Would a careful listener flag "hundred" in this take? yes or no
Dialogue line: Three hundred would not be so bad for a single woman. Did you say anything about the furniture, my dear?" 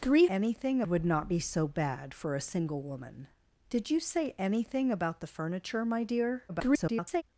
yes